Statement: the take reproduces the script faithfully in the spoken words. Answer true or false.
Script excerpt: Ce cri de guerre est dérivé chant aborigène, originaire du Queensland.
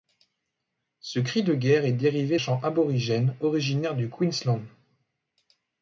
true